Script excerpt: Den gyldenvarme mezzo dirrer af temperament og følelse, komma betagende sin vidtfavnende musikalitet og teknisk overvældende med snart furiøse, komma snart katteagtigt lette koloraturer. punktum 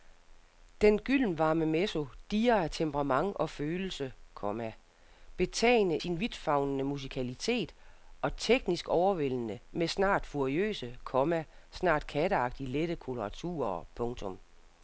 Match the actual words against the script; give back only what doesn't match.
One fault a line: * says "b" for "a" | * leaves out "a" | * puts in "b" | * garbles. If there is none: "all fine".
all fine